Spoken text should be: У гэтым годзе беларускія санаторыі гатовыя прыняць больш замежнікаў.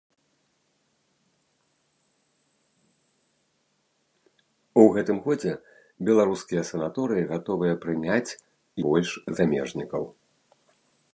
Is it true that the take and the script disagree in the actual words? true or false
false